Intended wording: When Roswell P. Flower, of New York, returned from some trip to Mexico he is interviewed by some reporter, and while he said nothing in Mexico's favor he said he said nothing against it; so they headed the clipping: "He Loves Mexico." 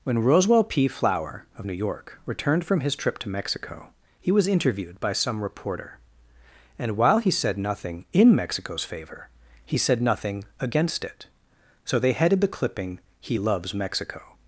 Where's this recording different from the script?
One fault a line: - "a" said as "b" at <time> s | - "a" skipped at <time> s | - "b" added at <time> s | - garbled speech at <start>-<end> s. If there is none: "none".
- "some" said as "his" at 2.8 s
- "is" said as "was" at 4.3 s
- "he said" skipped at 10.0 s